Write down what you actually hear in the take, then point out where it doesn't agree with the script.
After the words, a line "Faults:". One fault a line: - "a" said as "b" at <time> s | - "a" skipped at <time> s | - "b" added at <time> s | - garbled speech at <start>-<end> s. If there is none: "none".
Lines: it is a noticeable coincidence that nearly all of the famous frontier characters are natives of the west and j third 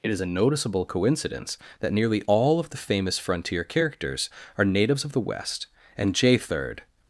it is a noticeable coincidence that nearly all of the famous frontier characters are natives of the west and j third
Faults:
none